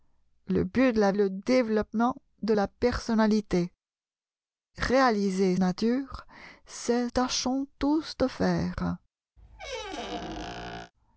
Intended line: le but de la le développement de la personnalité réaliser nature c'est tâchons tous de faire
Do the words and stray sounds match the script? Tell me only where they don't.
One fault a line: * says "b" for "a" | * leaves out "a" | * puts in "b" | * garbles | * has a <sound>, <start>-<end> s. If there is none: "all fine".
* has a squeak, 9.4-10.9 s